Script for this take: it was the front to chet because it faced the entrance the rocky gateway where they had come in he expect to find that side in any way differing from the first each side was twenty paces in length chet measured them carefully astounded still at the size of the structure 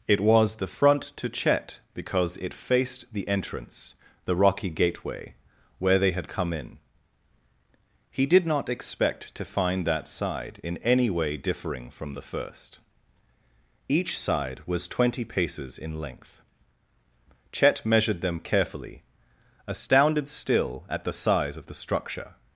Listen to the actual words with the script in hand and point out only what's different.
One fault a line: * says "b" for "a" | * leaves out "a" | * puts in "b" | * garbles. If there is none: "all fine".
* puts in "did not"